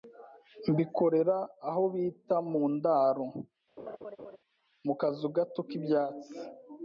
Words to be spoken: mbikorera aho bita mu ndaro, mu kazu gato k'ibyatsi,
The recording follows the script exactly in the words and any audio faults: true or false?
false